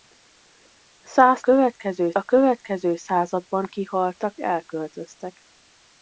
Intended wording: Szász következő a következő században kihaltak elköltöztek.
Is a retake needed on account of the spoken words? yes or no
no